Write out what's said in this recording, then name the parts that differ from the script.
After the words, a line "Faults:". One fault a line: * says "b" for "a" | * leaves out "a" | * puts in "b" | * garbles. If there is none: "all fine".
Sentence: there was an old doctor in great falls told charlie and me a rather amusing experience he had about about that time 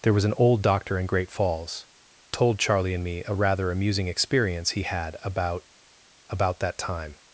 there was an old doctor in great falls told charlie and me a rather amusing experience he had about about that time
Faults:
all fine